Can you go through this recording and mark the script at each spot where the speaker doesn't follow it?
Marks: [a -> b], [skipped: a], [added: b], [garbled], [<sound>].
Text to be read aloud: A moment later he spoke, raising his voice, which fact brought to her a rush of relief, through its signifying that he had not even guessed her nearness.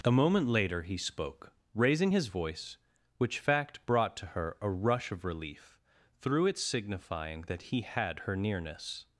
A moment later he spoke, raising his voice, which fact brought to her a rush of relief, through its signifying that he had [skipped: not even guessed] her nearness.